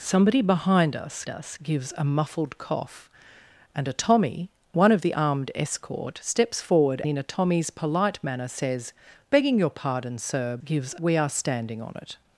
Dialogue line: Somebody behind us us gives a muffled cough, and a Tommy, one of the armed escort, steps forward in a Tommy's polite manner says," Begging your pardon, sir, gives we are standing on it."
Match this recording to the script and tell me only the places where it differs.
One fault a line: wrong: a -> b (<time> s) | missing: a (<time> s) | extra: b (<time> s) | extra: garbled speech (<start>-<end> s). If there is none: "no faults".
no faults